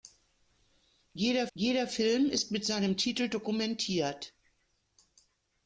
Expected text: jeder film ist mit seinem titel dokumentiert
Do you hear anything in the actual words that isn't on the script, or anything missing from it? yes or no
yes